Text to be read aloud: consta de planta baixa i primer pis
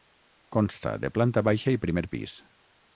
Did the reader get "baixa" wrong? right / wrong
right